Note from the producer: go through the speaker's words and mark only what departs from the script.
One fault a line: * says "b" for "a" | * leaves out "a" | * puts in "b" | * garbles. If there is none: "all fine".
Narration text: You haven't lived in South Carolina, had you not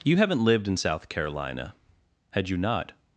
all fine